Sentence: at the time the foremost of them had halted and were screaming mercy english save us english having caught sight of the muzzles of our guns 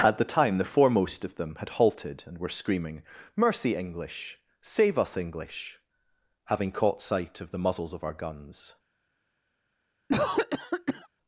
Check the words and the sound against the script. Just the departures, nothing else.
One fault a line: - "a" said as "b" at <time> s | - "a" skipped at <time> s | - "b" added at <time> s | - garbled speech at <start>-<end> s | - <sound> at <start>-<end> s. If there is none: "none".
- cough at 10.1-11.1 s